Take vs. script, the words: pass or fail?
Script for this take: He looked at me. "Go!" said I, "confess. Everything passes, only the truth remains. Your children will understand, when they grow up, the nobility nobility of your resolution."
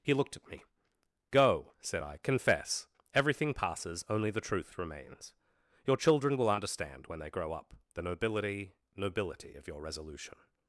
pass